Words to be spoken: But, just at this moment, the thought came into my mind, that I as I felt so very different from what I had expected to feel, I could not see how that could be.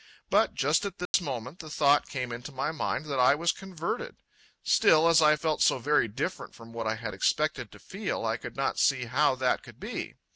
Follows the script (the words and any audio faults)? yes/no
no